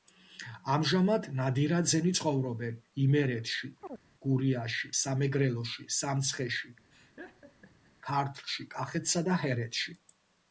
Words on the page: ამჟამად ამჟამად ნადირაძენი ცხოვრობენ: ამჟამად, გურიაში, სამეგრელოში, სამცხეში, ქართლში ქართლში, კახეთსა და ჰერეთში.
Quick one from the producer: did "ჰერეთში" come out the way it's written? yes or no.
yes